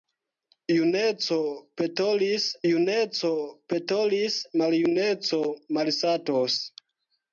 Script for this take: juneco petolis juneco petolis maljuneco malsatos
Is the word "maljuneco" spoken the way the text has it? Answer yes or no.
yes